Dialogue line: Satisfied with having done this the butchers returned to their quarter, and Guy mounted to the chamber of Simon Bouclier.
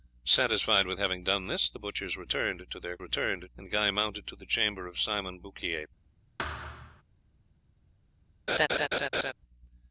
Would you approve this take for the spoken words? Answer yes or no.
no